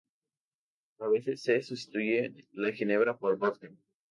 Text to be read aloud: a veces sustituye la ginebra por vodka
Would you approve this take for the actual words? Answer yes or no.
no